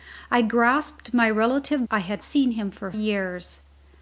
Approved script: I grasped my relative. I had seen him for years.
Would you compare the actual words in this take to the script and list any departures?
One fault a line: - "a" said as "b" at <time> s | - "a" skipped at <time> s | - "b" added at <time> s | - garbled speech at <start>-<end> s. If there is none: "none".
none